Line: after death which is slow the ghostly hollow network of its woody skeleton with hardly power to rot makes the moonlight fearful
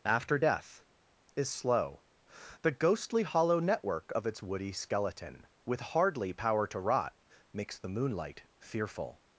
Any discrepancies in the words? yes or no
yes